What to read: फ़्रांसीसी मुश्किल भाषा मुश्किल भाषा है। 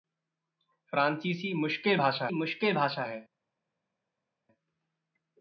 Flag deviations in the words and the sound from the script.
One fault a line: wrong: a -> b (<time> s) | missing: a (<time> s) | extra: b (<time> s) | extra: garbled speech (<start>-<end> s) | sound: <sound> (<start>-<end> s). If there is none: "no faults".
no faults